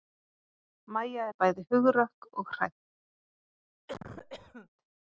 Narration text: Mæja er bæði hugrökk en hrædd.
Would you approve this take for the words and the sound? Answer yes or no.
no